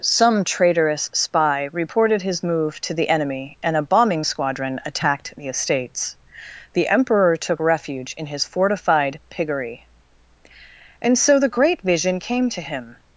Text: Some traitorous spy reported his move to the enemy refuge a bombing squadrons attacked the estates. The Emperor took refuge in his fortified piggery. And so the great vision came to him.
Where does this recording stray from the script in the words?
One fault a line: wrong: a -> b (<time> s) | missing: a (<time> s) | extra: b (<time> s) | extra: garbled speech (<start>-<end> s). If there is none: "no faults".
wrong: refuge -> and (3.6 s)
wrong: squadrons -> squadron (4.2 s)